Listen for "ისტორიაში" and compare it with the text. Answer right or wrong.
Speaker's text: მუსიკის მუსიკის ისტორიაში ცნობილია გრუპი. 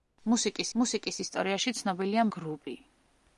right